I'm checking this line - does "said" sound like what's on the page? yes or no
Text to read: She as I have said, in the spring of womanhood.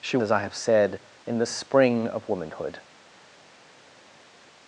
yes